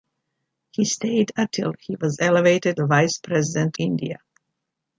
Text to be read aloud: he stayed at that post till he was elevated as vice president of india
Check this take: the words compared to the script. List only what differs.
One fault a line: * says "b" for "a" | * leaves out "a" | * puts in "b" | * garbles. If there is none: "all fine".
* leaves out "that post"
* leaves out "as"
* leaves out "of"